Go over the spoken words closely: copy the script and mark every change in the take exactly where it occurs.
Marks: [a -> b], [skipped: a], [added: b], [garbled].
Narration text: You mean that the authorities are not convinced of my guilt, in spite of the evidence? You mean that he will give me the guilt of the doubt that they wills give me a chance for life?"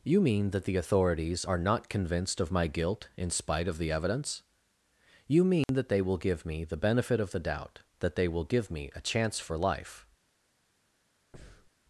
You mean that the authorities are not convinced of my guilt, in spite of the evidence? You mean that [he -> they] will give me the [guilt -> benefit] of the doubt that they [wills -> will] give me a chance for life?"